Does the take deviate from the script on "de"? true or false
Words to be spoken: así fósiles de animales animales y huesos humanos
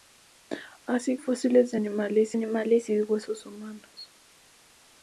false